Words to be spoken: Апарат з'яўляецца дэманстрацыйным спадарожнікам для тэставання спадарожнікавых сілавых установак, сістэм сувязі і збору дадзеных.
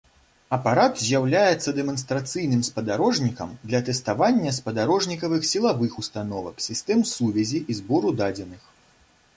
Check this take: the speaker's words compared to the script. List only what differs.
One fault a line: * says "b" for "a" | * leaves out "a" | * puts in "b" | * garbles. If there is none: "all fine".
all fine